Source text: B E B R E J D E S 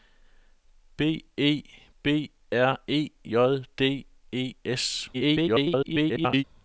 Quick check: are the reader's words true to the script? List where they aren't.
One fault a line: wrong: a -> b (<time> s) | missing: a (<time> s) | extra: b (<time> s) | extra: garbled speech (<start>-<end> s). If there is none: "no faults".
extra: garbled speech (5.1-6.4 s)